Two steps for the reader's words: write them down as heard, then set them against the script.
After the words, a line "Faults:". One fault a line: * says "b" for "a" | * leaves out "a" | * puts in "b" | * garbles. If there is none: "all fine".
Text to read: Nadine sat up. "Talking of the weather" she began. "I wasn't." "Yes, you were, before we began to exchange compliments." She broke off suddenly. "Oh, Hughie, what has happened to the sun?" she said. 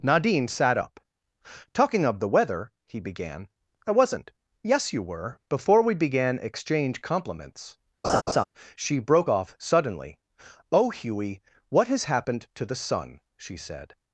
Nadine sat up. "Talking of the weather" he began. "I wasn't." "Yes, you were, before we began exchange compliments." She broke off suddenly. "Oh, Hughie, what has happened to the sun?" she said.
Faults:
* says "he" for "she"
* leaves out "to"